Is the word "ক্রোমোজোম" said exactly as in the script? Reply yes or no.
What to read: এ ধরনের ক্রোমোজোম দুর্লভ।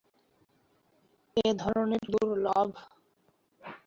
no